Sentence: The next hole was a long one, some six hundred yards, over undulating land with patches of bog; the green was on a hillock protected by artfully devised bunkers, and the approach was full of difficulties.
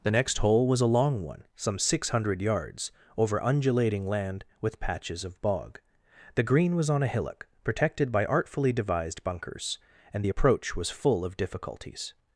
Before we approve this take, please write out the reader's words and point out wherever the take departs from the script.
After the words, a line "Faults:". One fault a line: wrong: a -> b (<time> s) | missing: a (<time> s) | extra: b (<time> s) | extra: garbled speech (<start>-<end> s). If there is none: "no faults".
The next hole was a long one, some six hundred yards, over undulating land with patches of bog; the green was on a hillock protected by artfully devised bunkers, and the approach was full of difficulties.
Faults:
no faults